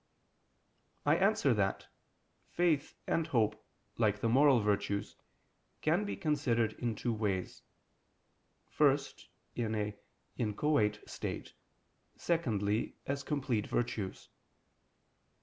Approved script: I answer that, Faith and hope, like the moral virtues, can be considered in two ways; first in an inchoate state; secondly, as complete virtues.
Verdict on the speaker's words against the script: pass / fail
pass